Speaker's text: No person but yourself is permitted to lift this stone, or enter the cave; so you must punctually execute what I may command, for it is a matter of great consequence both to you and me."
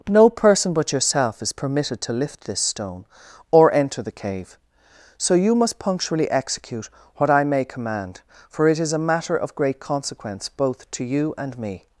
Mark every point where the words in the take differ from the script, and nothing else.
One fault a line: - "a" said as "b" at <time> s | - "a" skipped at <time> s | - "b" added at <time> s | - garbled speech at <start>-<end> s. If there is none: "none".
none